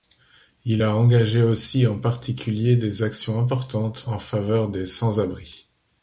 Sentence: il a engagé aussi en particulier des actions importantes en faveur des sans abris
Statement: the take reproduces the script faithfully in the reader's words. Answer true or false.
true